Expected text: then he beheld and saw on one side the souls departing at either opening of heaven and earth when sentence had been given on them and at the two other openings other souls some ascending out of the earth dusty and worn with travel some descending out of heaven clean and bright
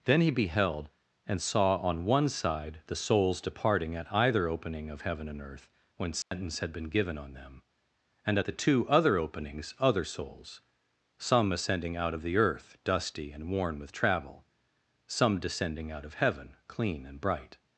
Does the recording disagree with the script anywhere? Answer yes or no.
no